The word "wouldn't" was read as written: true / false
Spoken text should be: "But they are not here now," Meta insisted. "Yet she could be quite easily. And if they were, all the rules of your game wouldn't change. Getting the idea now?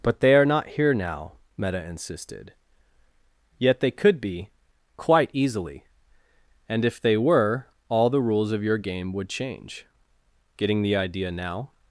false